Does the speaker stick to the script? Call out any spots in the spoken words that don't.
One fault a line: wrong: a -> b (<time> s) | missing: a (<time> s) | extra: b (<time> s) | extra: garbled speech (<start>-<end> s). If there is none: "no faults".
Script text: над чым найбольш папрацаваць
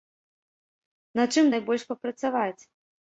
no faults